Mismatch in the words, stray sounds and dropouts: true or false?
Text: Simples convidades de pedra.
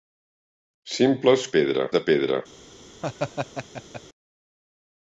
true